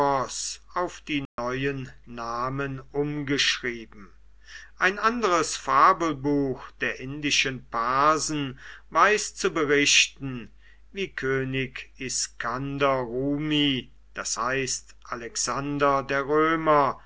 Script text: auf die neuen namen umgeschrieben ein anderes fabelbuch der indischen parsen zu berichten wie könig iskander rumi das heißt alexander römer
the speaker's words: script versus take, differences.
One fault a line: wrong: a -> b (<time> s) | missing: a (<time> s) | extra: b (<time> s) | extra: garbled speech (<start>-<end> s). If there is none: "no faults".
extra: weiß (8.9 s)
extra: der (16.0 s)